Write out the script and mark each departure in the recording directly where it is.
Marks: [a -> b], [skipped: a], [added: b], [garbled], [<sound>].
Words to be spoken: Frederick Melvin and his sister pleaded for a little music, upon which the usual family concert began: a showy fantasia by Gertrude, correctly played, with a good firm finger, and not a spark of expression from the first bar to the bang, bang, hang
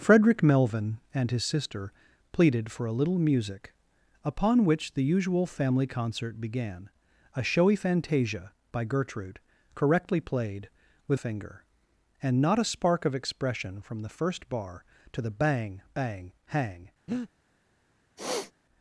Frederick Melvin and his sister pleaded for a little music, upon which the usual family concert began: a showy fantasia by Gertrude, correctly played, with [skipped: a good firm] finger, and not a spark of expression from the first bar to the bang, bang, hang [breath] [sniff]